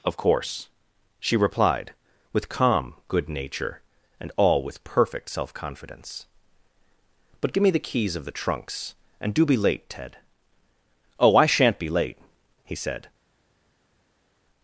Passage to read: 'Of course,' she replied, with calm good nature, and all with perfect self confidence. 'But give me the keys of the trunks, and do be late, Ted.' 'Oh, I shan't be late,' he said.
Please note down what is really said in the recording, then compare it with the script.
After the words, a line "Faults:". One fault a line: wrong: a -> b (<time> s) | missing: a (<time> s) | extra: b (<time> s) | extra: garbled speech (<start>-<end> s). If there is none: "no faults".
'Of course,' she replied, with calm good nature, and all with perfect self confidence. 'But give me the keys of the trunks, and do be late, Ted.' 'Oh, I shan't be late,' he said.
Faults:
no faults